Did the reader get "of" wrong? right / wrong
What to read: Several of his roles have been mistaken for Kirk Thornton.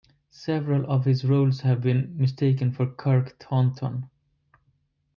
right